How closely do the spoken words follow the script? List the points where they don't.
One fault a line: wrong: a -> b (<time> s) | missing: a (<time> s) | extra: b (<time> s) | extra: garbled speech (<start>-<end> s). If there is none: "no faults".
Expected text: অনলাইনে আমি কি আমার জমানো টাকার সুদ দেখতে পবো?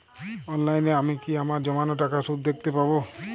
no faults